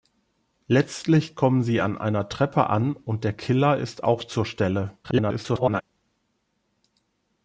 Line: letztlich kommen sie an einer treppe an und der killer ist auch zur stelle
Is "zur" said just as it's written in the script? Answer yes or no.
yes